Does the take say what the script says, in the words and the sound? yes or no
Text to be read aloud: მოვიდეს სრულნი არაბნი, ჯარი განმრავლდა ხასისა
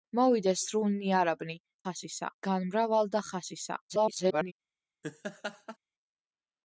no